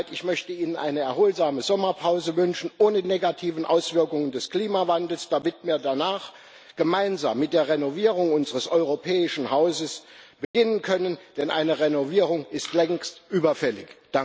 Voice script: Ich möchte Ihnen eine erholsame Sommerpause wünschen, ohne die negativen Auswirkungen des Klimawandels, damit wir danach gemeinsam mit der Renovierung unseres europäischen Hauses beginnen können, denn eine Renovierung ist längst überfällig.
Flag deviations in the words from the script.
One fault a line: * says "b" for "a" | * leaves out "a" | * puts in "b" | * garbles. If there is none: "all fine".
* leaves out "die"